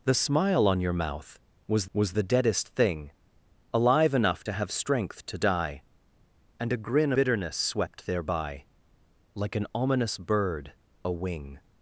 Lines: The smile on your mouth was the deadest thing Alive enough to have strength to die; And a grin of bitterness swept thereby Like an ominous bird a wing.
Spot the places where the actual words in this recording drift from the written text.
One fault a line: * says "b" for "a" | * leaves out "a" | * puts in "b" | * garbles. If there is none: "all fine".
* puts in "was"
* leaves out "of"